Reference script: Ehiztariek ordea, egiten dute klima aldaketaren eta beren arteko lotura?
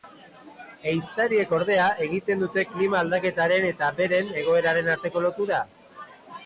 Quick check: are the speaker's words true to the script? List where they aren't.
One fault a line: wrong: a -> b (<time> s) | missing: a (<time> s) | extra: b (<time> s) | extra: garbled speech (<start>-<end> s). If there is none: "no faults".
extra: egoeraren (4.4 s)